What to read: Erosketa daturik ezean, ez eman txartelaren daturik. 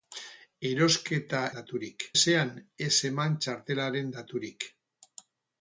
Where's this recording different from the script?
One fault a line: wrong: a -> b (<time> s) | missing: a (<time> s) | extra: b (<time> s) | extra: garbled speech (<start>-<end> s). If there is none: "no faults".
no faults